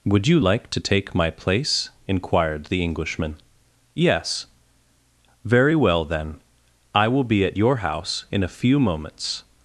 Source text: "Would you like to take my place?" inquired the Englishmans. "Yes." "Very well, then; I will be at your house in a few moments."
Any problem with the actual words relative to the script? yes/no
yes